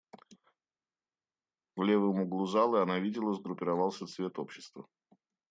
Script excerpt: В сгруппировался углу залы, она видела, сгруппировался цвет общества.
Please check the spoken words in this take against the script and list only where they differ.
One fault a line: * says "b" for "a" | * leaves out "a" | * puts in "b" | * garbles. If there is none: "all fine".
* says "левом" for "сгруппировался"